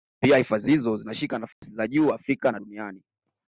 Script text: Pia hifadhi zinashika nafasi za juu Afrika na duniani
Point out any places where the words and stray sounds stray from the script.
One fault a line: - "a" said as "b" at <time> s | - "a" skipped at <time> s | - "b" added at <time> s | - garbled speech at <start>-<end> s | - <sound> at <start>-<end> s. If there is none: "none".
- "hizo" added at 0.7 s
- dropout at 1.5-1.6 s